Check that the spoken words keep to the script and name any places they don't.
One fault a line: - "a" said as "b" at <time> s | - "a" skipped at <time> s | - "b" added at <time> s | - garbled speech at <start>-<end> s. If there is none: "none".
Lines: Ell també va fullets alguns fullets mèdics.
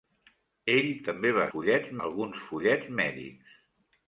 none